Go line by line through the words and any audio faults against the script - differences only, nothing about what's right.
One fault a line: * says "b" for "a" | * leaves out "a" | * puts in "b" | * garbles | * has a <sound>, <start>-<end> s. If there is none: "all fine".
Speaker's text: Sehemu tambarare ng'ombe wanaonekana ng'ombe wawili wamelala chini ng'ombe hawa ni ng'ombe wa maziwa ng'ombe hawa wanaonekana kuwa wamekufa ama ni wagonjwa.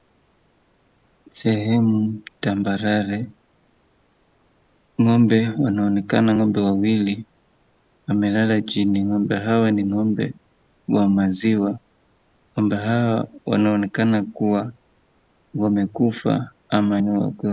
all fine